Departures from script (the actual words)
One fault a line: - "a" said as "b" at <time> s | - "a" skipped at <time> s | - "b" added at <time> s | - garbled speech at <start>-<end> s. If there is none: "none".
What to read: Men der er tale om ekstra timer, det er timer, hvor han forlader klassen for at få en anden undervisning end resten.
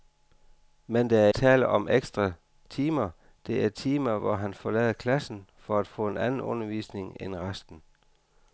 none